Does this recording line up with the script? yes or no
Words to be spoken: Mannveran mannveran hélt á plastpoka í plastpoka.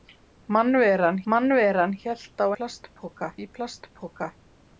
yes